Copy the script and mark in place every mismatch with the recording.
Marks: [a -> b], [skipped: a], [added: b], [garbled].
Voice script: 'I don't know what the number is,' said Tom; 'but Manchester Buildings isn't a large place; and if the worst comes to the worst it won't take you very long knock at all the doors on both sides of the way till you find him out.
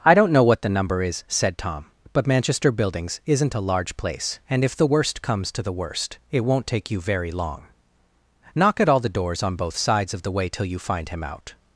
'I don't know what the number is,' said Tom; 'but Manchester Buildings isn't a large place; and if the worst comes to the worst it won't take you very long knock at all the doors on both sides of the way till you find him out.